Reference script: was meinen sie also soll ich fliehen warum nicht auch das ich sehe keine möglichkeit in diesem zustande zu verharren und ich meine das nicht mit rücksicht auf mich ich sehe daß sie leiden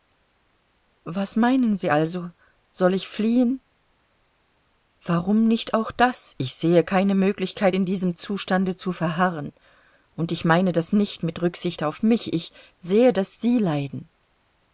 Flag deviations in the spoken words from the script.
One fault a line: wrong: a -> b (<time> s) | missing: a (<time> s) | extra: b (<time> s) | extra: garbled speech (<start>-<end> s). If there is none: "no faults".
no faults